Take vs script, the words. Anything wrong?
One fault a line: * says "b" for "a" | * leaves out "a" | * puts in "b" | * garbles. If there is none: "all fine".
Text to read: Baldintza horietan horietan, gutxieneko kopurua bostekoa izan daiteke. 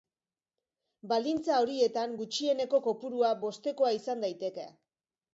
* leaves out "horietan"